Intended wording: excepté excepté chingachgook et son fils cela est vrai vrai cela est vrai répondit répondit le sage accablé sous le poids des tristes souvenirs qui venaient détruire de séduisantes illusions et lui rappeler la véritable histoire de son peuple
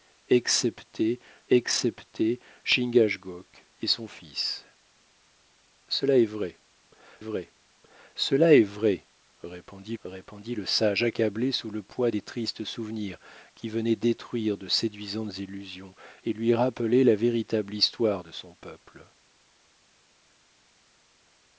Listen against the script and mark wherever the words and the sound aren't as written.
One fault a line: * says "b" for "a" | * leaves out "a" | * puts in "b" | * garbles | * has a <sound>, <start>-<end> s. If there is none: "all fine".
all fine